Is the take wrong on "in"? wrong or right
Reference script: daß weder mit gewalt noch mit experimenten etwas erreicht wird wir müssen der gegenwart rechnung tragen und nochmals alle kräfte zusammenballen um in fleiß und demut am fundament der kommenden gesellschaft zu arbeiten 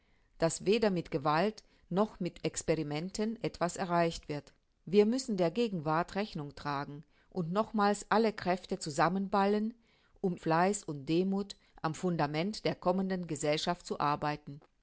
wrong